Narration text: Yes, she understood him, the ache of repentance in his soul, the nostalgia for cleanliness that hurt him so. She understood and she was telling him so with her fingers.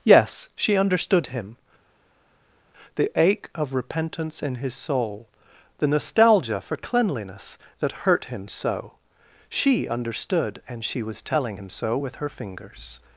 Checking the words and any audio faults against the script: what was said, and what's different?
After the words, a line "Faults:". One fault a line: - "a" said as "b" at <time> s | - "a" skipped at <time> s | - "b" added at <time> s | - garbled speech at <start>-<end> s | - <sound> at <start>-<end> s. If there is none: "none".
Yes, she understood him, the ache of repentance in his soul, the nostalgia for cleanliness that hurt him so. She understood and she was telling him so with her fingers.
Faults:
none